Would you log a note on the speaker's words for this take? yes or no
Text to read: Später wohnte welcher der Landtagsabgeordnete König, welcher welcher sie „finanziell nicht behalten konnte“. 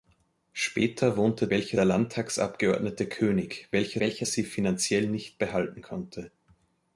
no